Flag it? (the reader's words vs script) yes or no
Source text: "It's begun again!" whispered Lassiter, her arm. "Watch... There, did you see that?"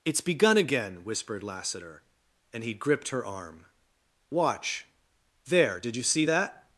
yes